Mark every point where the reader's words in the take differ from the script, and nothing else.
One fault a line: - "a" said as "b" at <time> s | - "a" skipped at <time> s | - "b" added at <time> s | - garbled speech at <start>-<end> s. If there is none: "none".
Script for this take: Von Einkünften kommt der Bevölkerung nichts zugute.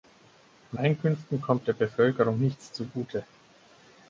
none